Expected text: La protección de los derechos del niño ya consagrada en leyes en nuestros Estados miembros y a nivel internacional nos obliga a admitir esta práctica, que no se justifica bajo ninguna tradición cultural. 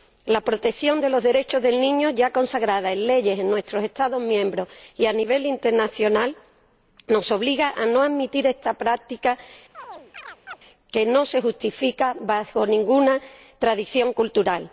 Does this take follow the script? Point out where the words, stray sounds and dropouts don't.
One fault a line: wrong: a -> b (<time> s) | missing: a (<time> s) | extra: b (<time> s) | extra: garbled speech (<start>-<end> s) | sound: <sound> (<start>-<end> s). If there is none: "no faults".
extra: no (7.8 s)
sound: chirp (9.7-10.6 s)